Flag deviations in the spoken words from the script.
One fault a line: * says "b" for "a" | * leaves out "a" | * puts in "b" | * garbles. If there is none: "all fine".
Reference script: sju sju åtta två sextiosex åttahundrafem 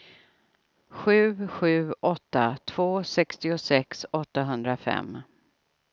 all fine